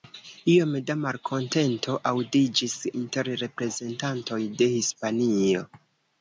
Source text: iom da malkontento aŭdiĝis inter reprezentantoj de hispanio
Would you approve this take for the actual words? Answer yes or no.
yes